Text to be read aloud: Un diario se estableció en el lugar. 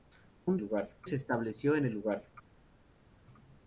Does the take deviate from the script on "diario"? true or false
true